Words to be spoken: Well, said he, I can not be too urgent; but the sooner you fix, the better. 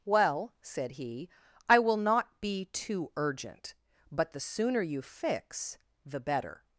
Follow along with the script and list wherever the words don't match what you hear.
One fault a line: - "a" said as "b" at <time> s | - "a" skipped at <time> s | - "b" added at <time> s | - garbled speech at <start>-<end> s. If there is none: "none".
- "can" said as "will" at 1.8 s